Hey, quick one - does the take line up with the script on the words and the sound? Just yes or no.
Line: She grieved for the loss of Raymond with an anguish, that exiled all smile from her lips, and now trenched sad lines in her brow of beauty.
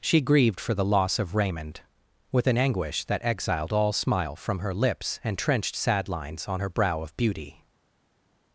no